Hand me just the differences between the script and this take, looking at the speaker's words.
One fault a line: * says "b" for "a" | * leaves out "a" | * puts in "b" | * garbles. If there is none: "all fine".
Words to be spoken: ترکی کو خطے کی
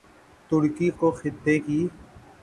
all fine